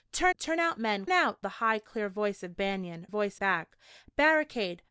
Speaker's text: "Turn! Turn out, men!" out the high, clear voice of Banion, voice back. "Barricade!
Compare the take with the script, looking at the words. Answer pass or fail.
pass